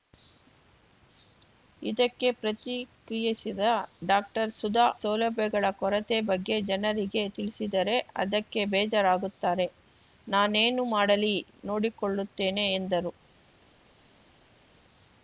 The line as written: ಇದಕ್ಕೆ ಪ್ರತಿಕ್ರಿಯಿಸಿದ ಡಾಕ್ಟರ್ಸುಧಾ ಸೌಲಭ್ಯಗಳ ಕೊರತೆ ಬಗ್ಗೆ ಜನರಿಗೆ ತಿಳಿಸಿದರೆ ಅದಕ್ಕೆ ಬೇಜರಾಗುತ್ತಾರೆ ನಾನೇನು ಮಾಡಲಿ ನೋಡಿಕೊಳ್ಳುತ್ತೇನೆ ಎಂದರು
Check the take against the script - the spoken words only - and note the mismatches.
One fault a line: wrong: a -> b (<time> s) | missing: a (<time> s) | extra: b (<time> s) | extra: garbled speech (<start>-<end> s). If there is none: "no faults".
no faults